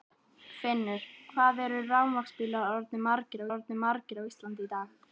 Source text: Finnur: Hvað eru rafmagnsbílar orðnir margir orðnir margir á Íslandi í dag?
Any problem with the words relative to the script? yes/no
no